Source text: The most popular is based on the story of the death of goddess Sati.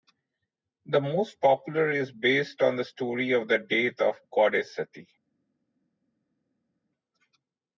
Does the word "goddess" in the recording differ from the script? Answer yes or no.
no